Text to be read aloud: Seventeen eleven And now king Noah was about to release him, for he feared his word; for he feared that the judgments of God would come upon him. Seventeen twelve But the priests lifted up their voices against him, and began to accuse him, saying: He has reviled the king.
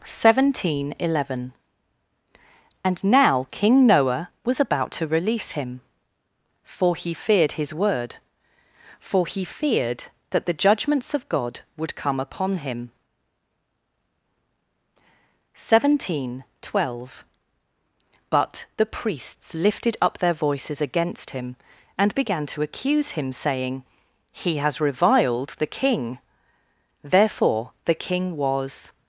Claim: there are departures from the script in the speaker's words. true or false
true